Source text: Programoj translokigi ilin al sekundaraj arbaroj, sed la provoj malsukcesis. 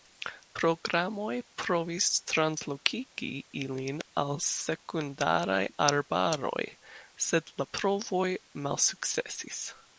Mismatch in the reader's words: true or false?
true